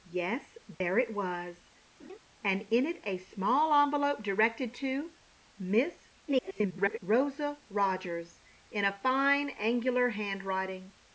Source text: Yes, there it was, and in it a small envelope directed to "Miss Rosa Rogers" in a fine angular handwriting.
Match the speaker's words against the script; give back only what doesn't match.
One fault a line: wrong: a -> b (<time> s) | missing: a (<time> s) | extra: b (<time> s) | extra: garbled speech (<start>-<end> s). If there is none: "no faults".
extra: garbled speech (6.3-7.0 s)